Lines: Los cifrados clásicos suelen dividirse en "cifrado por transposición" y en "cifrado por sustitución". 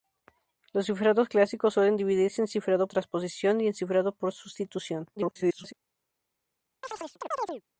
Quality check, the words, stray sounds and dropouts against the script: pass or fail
fail